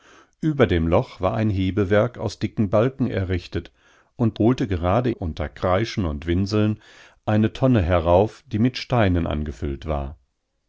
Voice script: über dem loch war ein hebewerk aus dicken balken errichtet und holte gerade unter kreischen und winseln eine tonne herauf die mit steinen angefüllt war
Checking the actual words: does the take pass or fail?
pass